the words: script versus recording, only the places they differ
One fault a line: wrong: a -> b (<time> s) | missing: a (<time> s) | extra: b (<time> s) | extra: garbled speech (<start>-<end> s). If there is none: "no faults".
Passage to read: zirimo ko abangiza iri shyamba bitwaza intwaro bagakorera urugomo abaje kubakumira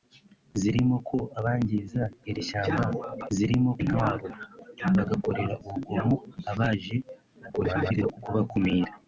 wrong: bitwaza -> zirimo (3.3 s)
extra: garbled speech (7.5-8.2 s)